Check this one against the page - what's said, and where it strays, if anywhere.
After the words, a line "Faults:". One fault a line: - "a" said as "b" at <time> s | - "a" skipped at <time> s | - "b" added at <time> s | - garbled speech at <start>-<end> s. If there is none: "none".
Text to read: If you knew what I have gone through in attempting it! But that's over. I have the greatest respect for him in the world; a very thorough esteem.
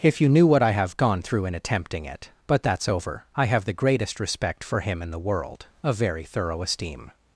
If you knew what I have gone through in attempting it! But that's over. I have the greatest respect for him in the world; a very thorough esteem.
Faults:
none